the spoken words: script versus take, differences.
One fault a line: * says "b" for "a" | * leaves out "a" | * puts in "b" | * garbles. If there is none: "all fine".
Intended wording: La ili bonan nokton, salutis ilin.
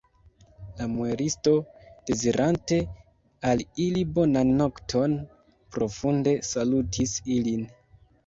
* puts in "muelisto dezirante al"
* puts in "profunde"